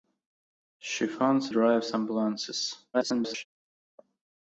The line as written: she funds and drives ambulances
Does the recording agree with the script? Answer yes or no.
no